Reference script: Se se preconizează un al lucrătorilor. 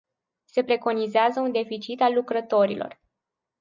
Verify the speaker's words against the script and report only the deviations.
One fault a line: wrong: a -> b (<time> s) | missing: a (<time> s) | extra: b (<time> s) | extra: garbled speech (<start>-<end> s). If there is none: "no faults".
missing: se (0.6 s)
extra: deficit (1.5 s)